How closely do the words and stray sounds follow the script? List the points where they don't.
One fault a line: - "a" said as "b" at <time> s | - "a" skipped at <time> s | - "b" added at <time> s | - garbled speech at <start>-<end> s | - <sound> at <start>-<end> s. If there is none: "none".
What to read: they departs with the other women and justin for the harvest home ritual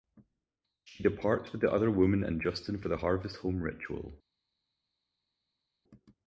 - "they" said as "she" at 0.8 s